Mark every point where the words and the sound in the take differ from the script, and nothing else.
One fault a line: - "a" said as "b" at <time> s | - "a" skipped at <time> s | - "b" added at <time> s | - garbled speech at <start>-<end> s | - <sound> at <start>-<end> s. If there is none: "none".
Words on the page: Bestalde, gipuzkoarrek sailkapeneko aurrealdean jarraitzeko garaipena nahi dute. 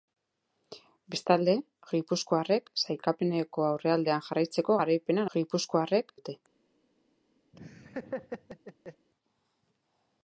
- "nahi" said as "gipuzkoarrek" at 5.3 s
- laugh at 7.5-9.1 s